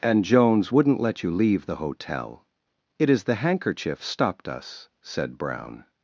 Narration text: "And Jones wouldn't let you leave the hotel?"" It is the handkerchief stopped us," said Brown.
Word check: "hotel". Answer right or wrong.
right